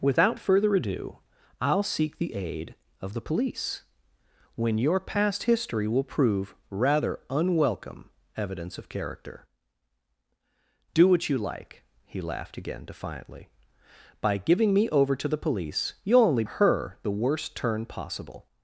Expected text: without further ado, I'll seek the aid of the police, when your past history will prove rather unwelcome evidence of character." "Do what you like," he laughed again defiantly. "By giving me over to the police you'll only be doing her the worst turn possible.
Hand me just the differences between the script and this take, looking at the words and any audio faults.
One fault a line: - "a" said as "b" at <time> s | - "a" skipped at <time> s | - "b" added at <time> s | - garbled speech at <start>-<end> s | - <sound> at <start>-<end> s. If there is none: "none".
- "be doing" skipped at 16.4 s